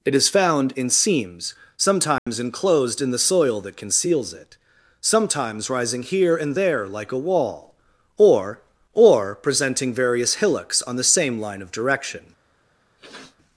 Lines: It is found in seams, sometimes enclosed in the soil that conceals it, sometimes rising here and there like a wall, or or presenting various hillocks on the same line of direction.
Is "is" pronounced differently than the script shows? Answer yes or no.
no